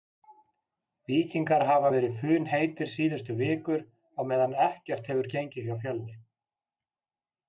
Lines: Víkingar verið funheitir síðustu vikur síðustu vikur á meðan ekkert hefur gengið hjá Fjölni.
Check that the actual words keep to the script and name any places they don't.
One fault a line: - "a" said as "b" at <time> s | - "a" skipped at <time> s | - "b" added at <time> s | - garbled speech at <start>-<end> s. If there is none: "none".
- "hafa" added at 1.7 s
- "síðustu vikur" skipped at 3.8 s